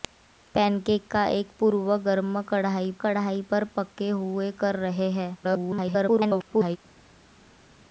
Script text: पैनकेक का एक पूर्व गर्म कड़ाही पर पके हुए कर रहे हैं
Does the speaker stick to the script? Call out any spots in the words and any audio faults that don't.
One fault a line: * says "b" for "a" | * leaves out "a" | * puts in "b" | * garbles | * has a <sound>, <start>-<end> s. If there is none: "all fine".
* puts in "कड़ाही"
* garbles